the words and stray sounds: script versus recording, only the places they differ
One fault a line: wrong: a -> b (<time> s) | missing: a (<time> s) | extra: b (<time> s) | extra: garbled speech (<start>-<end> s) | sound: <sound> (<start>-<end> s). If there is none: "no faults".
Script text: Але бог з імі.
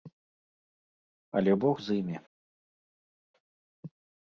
no faults